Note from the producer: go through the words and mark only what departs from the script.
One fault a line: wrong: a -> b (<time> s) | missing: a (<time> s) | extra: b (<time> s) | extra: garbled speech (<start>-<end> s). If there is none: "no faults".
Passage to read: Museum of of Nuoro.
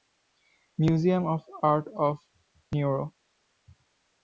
extra: art (1.6 s)